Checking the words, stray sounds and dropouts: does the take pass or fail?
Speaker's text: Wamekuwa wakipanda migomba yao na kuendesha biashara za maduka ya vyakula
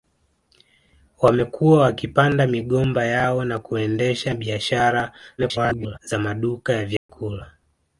fail